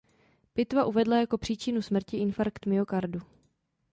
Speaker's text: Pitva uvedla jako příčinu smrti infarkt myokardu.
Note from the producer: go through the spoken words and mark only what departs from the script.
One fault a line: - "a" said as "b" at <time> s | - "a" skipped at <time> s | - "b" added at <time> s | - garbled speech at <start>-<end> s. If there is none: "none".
none